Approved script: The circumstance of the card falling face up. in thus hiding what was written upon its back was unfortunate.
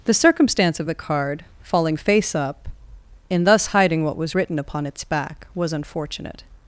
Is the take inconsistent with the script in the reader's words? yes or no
no